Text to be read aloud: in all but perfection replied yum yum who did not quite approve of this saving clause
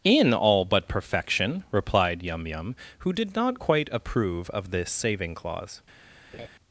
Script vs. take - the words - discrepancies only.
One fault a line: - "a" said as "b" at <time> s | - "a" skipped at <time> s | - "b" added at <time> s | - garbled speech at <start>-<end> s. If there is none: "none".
none